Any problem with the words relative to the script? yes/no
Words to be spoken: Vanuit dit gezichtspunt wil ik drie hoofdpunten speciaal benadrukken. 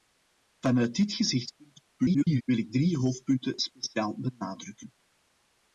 yes